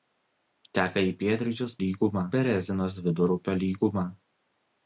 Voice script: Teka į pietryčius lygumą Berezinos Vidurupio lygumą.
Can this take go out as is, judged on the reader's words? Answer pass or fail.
pass